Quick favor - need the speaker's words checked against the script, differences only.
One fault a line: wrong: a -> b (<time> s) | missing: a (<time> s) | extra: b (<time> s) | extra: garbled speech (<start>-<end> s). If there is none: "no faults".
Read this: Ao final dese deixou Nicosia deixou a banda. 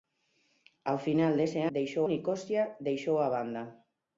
no faults